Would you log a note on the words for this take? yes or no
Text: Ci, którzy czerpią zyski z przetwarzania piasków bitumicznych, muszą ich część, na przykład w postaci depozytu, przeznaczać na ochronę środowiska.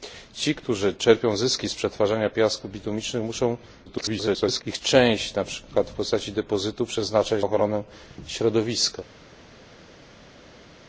yes